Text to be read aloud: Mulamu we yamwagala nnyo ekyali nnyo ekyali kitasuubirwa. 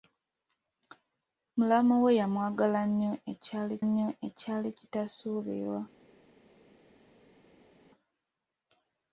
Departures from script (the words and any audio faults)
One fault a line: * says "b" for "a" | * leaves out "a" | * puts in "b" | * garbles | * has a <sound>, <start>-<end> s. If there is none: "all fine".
all fine